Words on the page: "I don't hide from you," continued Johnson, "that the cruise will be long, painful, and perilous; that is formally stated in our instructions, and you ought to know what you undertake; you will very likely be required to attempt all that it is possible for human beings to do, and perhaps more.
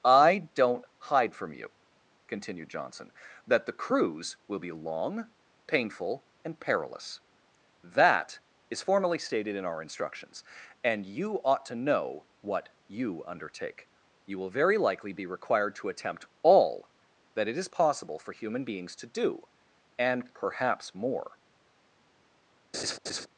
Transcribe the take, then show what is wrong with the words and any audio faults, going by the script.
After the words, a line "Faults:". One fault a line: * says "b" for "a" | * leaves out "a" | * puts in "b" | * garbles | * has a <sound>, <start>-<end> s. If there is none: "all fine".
"I don't hide from you," continued Johnson, "that the cruise will be long, painful, and perilous; that is formally stated in our instructions, and you ought to know what you undertake; you will very likely be required to attempt all that it is possible for human beings to do, and perhaps more.
Faults:
* has a laugh, 22.7-23.3 s